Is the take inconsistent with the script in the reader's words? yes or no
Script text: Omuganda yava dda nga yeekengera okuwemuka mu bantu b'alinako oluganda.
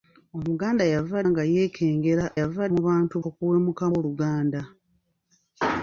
yes